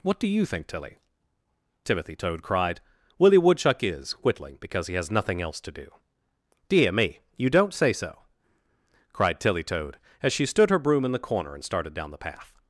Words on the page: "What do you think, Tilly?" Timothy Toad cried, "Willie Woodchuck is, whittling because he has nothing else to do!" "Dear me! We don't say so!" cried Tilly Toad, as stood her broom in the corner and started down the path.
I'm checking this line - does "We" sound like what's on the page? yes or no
no